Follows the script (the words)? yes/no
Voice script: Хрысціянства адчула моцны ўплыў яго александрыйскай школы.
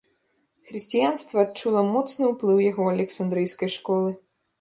yes